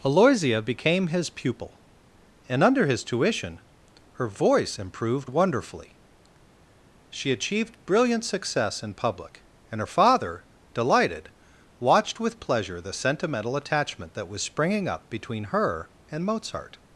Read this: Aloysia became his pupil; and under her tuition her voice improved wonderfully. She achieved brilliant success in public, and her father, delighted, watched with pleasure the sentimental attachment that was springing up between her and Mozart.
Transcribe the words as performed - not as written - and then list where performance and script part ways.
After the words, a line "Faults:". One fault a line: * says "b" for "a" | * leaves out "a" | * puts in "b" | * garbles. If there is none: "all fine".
Aloysia became his pupil; and under his tuition her voice improved wonderfully. She achieved brilliant success in public, and her father, delighted, watched with pleasure the sentimental attachment that was springing up between her and Mozart.
Faults:
* says "his" for "her"